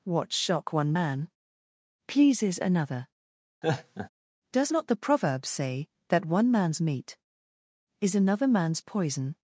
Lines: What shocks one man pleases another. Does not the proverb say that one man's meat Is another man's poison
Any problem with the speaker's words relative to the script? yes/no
yes